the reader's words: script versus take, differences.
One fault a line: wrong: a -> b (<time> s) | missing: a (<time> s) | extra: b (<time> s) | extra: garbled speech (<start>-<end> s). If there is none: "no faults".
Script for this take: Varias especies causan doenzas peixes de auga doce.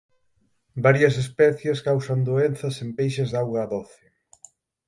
extra: en (2.8 s)